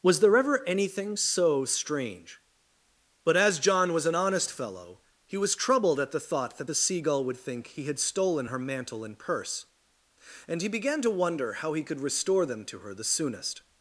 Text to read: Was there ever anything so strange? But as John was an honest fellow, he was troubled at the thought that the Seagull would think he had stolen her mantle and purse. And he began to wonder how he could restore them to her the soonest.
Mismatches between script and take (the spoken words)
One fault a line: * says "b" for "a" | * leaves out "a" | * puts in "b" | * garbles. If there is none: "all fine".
all fine